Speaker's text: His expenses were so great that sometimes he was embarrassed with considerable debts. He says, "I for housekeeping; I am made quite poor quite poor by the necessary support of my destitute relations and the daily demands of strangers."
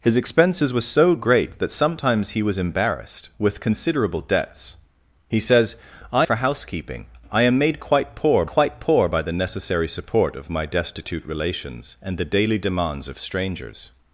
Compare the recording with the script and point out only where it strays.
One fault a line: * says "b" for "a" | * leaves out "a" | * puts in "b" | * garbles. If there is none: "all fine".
all fine